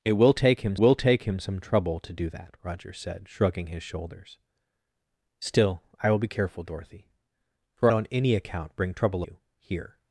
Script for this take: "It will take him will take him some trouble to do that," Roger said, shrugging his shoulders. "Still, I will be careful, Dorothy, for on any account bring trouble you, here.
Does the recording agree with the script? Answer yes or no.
yes